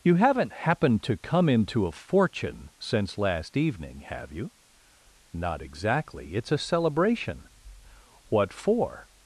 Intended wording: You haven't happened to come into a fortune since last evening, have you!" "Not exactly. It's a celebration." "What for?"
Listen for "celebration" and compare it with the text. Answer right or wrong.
right